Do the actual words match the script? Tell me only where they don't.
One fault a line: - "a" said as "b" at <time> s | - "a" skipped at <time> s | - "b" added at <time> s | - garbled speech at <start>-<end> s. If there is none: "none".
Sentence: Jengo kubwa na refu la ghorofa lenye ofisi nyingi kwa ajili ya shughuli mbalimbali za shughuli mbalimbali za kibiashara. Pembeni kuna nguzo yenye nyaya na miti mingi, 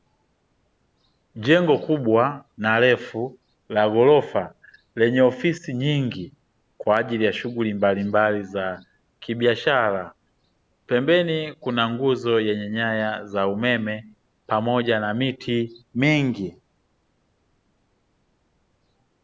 - "shughuli mbalimbali za" skipped at 8.8 s
- "za umeme pamoja" added at 13.2 s